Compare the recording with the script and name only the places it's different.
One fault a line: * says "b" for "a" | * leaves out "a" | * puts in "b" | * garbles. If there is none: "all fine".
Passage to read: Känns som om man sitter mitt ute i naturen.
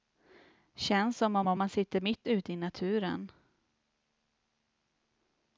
* puts in "om"